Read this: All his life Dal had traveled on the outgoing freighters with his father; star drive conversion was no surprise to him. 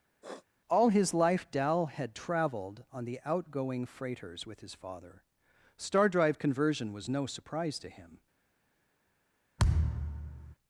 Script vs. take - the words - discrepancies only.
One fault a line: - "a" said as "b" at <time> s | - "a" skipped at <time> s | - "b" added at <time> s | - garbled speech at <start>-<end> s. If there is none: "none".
none